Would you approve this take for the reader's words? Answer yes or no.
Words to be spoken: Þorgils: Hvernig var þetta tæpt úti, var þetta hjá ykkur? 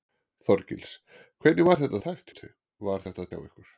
yes